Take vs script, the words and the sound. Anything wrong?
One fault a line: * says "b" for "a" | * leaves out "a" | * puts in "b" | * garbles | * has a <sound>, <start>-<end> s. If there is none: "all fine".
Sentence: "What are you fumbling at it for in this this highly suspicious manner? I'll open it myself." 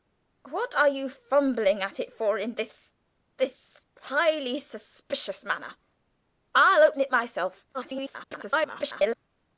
* garbles